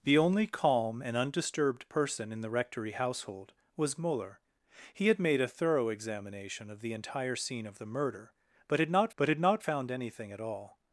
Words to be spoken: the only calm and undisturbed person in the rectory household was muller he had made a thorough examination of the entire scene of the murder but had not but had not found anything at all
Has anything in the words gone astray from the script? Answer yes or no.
no